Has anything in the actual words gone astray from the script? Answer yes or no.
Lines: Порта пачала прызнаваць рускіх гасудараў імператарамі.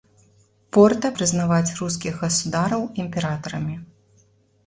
yes